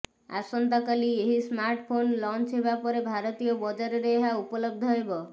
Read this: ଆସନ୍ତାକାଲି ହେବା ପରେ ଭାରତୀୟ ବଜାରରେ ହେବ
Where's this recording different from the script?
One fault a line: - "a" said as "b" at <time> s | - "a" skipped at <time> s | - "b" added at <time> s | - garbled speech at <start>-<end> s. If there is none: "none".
- "ଏହି ସ୍ମାର୍ଟଫୋନ୍ ଲଞ୍ଚ" added at 1.2 s
- "ଏହା ଉପଲବ୍ଧ" added at 4.1 s